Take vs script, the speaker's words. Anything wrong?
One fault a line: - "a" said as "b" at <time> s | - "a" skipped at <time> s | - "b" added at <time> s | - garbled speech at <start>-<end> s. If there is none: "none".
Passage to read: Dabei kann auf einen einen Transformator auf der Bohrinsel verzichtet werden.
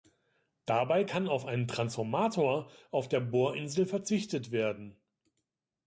- "einen" skipped at 1.7 s